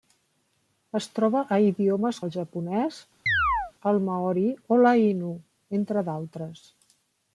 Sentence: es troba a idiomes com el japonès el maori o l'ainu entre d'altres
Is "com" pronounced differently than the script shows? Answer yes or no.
yes